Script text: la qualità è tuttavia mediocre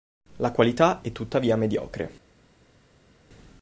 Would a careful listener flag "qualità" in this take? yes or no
no